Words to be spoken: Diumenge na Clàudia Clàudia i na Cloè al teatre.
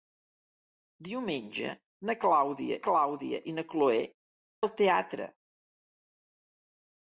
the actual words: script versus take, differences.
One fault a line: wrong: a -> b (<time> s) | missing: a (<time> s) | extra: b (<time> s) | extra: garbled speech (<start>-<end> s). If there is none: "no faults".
no faults